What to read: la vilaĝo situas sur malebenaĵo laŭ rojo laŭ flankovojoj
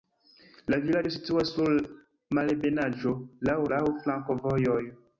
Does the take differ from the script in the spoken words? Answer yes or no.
yes